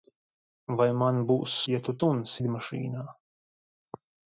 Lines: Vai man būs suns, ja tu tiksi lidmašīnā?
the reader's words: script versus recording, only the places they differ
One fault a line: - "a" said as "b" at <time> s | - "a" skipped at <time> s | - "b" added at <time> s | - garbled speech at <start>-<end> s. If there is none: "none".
- "suns" skipped at 1.6 s
- "tiksi" said as "suns" at 2.0 s